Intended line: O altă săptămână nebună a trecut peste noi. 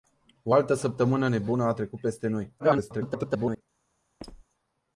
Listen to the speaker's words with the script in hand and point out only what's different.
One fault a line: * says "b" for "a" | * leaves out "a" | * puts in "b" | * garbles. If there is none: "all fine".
* garbles